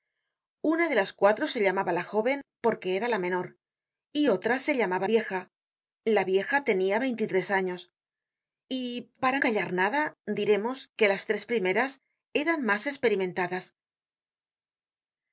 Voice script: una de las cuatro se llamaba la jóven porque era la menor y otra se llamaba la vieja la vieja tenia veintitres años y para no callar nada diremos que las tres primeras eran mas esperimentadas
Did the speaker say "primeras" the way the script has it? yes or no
yes